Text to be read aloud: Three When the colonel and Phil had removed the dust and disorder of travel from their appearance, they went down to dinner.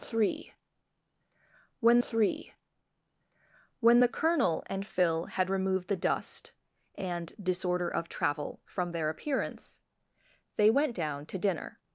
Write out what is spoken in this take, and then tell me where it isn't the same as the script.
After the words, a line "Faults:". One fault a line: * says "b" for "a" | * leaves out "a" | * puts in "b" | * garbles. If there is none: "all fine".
Three When three When the colonel and Phil had removed the dust and disorder of travel from their appearance, they went down to dinner.
Faults:
* puts in "three When"